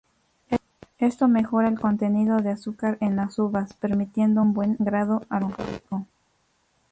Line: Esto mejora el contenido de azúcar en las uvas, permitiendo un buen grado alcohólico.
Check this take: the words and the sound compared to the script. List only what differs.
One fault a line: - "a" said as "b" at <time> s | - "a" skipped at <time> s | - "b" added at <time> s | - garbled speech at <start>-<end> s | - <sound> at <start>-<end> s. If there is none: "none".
none